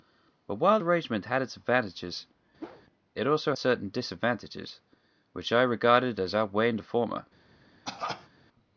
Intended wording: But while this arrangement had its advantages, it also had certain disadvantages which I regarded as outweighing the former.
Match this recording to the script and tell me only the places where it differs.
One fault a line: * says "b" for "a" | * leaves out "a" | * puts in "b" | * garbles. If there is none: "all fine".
* leaves out "this"
* leaves out "had"